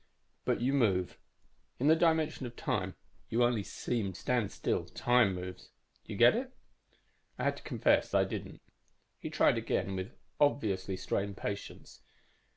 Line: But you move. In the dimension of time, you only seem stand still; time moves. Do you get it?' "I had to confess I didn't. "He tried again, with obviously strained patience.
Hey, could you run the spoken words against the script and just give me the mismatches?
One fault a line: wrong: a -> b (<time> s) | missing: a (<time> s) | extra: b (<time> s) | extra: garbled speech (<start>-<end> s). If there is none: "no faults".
no faults